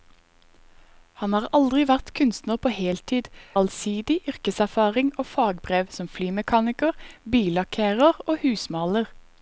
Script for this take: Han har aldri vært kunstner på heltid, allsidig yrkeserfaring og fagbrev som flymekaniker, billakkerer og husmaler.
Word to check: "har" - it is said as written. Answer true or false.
true